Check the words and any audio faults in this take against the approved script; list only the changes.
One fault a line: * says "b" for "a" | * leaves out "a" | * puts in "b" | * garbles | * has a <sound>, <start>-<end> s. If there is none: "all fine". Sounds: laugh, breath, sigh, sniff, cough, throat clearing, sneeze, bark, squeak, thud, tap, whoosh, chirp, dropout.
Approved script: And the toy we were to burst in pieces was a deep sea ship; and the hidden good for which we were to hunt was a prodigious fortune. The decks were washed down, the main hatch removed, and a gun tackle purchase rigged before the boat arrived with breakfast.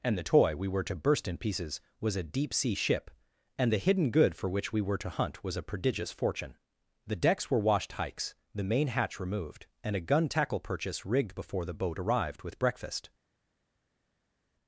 * says "hikes" for "down"